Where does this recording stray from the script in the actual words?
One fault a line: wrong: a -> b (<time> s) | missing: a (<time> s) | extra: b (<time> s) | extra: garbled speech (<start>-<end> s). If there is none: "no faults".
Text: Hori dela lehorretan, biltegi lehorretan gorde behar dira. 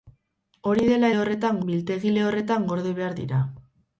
no faults